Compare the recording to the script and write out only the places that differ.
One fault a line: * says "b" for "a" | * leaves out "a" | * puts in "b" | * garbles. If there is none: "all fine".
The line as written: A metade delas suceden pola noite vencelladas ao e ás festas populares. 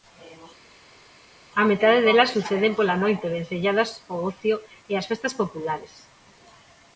* puts in "ocio"